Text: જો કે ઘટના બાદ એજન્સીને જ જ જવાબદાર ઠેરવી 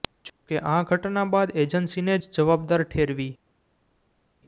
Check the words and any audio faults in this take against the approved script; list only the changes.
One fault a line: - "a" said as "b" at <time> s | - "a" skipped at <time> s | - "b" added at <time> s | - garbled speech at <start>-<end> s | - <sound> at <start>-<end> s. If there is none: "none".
- "આ" added at 0.7 s
- "જ" skipped at 2.3 s